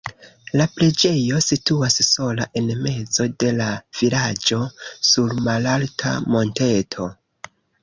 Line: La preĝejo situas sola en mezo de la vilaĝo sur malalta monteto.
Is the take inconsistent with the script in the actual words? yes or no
no